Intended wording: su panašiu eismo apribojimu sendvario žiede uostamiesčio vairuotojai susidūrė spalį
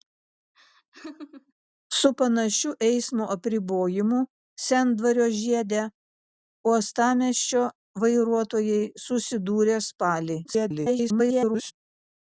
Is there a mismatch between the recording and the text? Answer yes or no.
yes